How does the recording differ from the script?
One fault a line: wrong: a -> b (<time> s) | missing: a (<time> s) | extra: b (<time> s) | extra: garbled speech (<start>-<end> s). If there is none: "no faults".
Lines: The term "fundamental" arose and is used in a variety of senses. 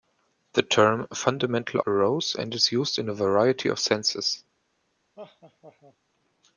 no faults